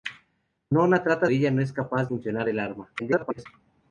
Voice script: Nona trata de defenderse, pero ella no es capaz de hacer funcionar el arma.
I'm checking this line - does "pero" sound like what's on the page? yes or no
no